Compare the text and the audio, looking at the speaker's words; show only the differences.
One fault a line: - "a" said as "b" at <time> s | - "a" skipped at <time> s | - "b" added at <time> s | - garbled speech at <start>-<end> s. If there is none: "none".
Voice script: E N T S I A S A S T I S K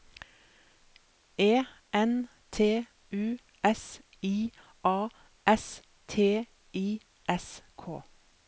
- "U" added at 3.1 s
- "A S" skipped at 5.8 s